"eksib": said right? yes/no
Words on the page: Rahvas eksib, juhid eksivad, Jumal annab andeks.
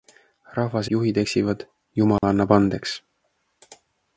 no